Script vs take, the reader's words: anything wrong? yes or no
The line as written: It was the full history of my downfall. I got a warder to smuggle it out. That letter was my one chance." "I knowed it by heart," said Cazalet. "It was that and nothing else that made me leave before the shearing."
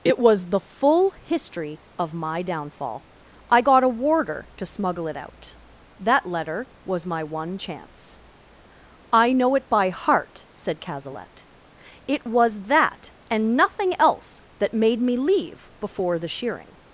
yes